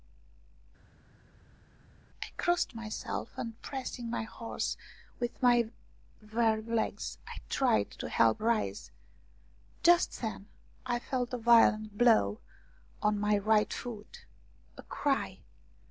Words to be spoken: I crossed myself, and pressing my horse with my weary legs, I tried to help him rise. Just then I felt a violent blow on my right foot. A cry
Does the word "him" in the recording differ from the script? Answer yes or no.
yes